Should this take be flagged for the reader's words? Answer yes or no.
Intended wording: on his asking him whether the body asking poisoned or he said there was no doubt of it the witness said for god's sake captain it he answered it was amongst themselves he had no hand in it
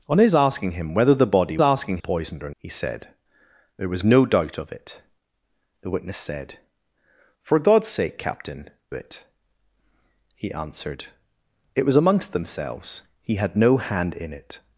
no